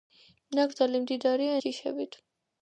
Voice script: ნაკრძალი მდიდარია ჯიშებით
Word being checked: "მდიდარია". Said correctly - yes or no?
yes